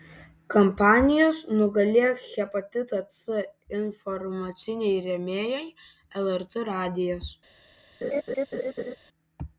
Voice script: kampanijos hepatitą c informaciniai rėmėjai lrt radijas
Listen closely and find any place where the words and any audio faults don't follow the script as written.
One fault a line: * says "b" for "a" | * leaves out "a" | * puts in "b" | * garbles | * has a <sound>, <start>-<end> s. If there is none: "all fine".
* puts in "nugalėk"
* has a laugh, 8.0-9.0 s